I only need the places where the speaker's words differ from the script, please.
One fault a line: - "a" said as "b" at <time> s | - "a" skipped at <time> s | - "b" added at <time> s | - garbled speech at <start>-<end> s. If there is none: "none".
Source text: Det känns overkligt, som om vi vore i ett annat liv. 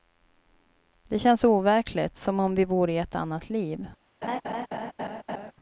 none